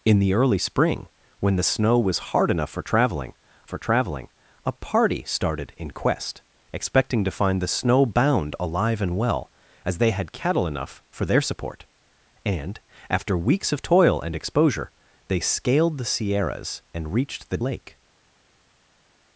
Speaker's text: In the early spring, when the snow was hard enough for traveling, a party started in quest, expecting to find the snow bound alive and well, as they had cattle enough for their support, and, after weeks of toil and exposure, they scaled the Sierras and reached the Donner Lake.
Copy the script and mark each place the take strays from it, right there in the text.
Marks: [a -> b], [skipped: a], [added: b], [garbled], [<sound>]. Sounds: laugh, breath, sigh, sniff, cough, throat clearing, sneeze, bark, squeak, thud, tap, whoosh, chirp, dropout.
In the early spring, when the snow was hard enough for traveling, [added: for traveling] a party started in quest, expecting to find the snow bound alive and well, as they had cattle enough for their support, and, after weeks of toil and exposure, they scaled the Sierras and reached the [skipped: Donner] Lake.